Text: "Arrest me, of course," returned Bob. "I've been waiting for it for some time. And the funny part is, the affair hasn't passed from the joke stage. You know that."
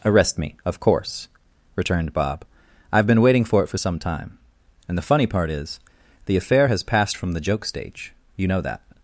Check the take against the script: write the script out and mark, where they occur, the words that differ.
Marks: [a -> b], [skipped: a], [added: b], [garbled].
"Arrest me, of course," returned Bob. "I've been waiting for it for some time. And the funny part is, the affair [hasn't -> has] passed from the joke stage. You know that."